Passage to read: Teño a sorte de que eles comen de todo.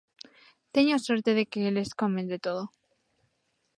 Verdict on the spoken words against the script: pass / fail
pass